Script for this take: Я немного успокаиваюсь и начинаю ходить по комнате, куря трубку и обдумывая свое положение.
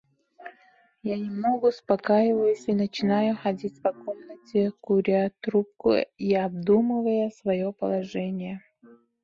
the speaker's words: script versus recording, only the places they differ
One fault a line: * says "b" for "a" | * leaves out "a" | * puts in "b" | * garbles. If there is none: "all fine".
all fine